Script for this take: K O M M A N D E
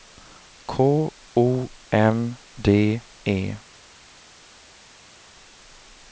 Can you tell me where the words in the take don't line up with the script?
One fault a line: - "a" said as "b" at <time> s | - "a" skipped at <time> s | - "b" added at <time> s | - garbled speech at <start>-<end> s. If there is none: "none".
- "M A N" skipped at 2.4 s